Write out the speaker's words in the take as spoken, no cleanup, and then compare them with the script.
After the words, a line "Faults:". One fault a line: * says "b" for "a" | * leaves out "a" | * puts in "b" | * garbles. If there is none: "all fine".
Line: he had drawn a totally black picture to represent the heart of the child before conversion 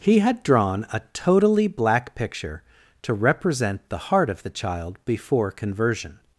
he had drawn a totally black picture to represent the heart of the child before conversion
Faults:
all fine